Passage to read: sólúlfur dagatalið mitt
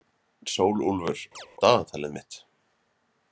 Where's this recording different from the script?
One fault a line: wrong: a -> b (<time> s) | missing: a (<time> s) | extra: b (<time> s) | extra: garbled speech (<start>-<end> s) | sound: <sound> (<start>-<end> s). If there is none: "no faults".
sound: chirp (1.3-1.5 s)